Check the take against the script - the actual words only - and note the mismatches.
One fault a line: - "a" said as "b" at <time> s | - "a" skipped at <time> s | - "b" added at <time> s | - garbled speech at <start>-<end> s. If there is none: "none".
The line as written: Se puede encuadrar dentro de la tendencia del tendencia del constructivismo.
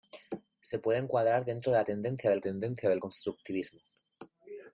none